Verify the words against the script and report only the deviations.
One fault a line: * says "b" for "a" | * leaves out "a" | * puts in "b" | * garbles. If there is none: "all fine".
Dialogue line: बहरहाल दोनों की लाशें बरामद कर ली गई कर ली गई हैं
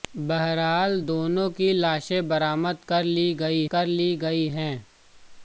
all fine